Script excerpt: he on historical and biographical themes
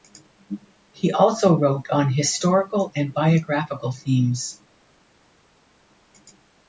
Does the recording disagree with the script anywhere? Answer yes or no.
yes